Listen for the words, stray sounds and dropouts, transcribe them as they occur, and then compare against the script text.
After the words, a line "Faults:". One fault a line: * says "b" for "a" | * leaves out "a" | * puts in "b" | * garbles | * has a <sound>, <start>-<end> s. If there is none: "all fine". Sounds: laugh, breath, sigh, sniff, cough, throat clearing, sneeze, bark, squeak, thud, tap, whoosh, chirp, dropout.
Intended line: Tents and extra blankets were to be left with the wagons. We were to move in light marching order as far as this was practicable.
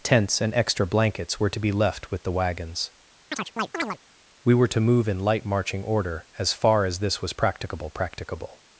Tents and extra blankets were to be left with the wagons. We were to move in light marching order as far as this was practicable practicable.
Faults:
* has a chirp, 3.3-4.0 s
* puts in "practicable"